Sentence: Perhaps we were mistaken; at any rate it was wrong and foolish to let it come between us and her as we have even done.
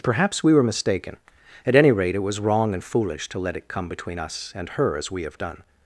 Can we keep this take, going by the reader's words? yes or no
no